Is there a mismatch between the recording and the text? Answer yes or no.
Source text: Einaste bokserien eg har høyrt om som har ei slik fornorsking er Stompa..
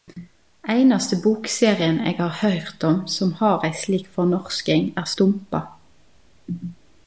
no